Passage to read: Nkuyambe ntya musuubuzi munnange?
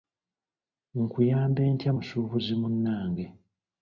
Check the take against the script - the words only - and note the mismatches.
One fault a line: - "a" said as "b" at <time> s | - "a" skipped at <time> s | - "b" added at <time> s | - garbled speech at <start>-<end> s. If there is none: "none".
none